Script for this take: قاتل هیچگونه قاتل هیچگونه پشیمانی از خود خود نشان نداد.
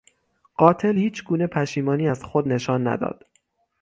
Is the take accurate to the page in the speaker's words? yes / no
no